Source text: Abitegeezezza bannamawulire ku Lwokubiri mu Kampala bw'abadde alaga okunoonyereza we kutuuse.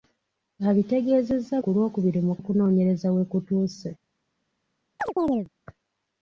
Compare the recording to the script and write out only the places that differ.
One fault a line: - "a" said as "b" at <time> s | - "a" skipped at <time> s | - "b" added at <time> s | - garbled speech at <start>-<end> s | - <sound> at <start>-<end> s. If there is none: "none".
- "bannamawulire" skipped at 1.6 s
- "Kampala bw'abadde alaga" skipped at 2.3 s
- chirp at 5.0-5.5 s